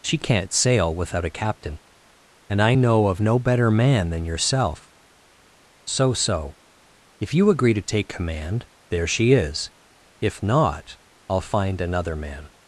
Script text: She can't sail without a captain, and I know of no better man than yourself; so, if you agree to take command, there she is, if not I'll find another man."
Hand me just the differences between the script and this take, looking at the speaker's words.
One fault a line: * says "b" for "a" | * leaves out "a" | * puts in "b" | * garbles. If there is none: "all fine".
* puts in "so"